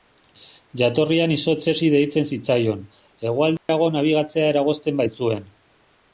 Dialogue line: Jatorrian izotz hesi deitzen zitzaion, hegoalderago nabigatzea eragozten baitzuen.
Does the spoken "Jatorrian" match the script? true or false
true